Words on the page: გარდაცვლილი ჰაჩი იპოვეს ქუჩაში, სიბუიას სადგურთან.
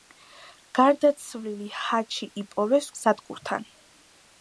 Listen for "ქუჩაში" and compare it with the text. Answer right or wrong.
wrong